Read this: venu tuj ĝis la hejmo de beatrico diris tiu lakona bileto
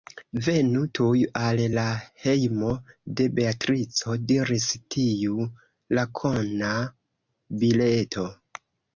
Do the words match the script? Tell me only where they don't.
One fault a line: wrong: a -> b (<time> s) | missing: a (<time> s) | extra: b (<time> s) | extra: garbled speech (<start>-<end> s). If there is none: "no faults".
wrong: ĝis -> al (1.4 s)